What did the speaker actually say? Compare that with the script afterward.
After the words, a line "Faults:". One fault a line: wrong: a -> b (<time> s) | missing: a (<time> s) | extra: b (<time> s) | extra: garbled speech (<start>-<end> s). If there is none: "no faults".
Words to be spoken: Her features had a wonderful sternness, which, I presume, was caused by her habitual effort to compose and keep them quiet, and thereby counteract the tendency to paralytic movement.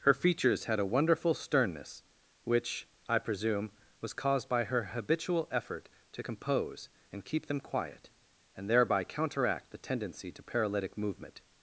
Her features had a wonderful sternness, which, I presume, was caused by her habitual effort to compose and keep them quiet, and thereby counteract the tendency to paralytic movement.
Faults:
no faults